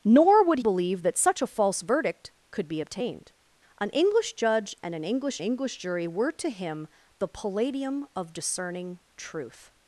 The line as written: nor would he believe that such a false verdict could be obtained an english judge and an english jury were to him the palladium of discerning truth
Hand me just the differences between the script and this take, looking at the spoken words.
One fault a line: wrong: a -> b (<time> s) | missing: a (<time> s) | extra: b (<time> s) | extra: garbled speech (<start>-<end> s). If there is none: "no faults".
missing: he (0.6 s)
extra: english (5.4 s)